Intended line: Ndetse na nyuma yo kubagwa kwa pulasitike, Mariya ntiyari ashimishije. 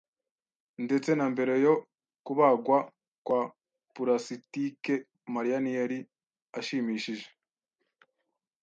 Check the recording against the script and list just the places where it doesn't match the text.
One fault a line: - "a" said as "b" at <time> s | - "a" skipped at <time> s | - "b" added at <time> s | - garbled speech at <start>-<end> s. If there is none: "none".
- "nyuma" said as "mbere" at 1.3 s